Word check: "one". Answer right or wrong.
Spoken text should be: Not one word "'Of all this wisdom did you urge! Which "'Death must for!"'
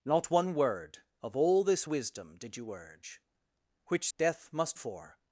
right